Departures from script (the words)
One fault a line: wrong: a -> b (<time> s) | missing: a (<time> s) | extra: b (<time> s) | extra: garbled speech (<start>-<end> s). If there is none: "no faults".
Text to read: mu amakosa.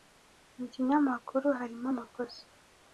extra: kinyamakuru harimo (0.7 s)